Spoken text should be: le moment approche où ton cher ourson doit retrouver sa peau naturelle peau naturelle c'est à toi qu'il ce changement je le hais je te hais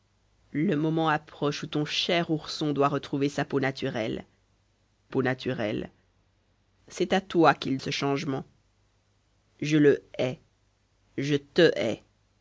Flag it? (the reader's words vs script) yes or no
no